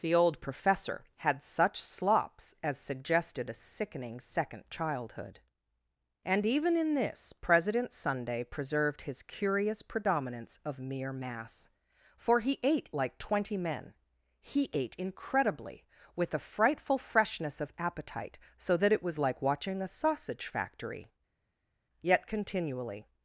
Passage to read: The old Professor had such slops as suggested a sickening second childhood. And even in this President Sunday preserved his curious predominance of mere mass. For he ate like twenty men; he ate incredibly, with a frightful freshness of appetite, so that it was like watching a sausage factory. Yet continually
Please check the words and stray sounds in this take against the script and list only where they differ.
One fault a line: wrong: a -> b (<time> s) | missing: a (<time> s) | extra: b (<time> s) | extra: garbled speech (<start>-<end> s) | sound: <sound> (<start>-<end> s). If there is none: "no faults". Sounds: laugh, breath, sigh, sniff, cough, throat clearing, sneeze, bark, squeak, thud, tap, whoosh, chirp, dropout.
no faults